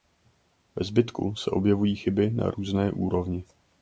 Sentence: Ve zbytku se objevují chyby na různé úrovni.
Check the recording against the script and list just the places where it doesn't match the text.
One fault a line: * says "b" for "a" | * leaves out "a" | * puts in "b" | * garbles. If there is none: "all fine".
all fine